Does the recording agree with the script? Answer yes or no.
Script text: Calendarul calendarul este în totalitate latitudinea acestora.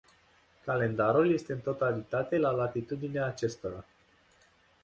no